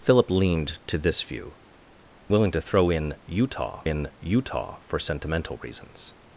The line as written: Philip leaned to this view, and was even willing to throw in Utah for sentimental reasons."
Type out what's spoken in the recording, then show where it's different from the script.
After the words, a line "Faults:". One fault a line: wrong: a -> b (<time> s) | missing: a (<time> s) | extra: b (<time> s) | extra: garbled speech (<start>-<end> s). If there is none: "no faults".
Philip leaned to this view, willing to throw in Utah in Utah for sentimental reasons."
Faults:
missing: and was even (1.6 s)
extra: in Utah (3.8 s)